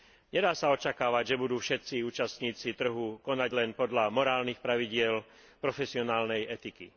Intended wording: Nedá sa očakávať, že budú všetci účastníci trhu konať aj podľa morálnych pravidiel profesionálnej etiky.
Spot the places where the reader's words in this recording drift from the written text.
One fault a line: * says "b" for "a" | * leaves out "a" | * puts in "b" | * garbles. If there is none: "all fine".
* says "len" for "aj"